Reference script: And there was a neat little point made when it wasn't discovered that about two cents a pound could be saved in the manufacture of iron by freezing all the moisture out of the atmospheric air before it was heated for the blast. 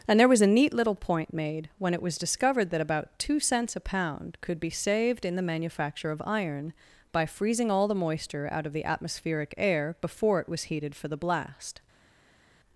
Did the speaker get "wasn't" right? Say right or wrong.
wrong